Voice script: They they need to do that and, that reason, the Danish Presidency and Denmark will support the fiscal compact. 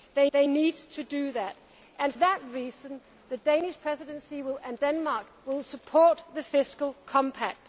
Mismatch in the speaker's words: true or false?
false